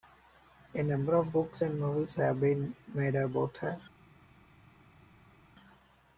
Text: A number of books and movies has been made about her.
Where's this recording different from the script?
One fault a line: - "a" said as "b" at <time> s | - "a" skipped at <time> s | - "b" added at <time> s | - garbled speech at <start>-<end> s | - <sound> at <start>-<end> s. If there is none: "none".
- "has" said as "have" at 2.1 s